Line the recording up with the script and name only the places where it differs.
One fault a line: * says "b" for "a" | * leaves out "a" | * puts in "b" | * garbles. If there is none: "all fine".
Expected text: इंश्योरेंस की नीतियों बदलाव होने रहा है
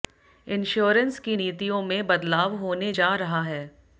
* puts in "में"
* puts in "जा"